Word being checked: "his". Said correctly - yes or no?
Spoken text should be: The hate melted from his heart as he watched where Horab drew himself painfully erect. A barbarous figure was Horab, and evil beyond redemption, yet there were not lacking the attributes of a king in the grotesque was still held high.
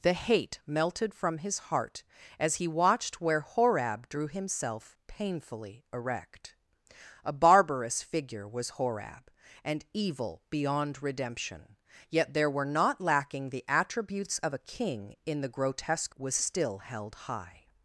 yes